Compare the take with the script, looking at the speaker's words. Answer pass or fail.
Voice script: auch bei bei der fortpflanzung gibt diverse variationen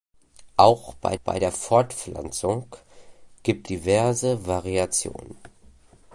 pass